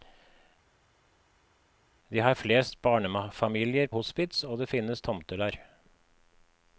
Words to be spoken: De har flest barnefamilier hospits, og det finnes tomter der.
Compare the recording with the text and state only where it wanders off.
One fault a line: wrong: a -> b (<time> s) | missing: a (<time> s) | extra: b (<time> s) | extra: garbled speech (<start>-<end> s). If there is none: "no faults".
no faults